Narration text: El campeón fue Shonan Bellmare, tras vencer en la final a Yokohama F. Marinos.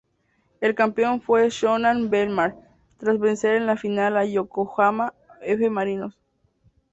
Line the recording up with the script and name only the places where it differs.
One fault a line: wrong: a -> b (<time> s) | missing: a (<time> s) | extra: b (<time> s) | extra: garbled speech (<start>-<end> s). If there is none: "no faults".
no faults